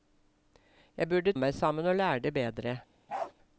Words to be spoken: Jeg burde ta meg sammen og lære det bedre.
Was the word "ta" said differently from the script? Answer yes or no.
yes